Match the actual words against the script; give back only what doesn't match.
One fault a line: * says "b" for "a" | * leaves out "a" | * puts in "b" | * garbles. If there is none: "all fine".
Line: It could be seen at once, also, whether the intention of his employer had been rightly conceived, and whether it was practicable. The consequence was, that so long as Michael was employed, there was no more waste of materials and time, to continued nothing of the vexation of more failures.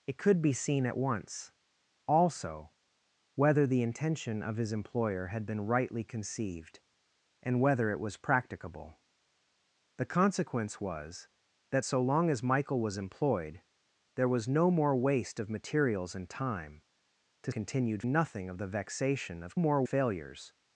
all fine